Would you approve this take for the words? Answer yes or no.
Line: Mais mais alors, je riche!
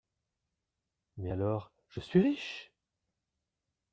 no